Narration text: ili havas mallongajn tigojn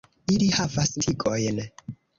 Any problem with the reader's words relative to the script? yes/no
yes